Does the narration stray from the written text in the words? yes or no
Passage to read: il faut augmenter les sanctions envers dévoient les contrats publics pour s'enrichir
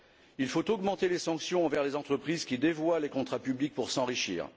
yes